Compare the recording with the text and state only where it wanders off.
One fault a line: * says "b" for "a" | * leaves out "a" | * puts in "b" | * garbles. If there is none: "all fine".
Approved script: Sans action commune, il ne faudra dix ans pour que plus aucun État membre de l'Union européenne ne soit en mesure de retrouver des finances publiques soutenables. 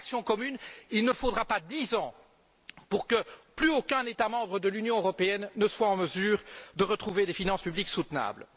* puts in "pas"